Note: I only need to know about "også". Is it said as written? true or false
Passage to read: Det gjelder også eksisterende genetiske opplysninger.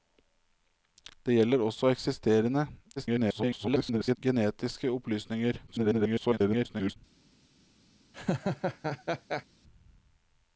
true